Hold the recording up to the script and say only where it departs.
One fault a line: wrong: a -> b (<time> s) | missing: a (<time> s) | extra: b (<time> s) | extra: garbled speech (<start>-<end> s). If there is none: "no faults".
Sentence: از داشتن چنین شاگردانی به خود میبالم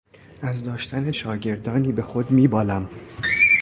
missing: چنین (1.1 s)